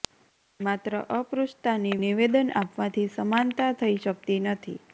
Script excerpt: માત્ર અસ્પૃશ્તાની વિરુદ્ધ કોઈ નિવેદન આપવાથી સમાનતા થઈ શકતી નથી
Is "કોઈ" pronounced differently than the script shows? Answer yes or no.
yes